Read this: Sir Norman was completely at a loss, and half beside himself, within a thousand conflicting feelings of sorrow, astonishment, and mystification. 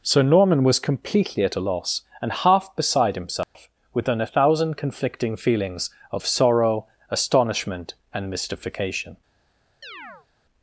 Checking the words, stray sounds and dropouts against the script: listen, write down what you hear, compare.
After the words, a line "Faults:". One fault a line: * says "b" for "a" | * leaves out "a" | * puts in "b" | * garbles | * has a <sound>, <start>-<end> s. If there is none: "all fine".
Sir Norman was completely at a loss, and half beside himself, within a thousand conflicting feelings of sorrow, astonishment, and mystification.
Faults:
* has a dropout, 3.4-3.6 s
* has a chirp, 9.8-10.3 s